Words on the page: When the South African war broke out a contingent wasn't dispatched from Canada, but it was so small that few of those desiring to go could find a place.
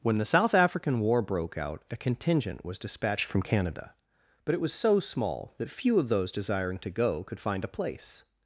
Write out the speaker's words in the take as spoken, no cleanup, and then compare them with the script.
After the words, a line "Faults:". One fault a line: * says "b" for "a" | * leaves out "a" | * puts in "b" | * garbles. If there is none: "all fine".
When the South African war broke out a contingent was dispatched from Canada, but it was so small that few of those desiring to go could find a place.
Faults:
* says "was" for "wasn't"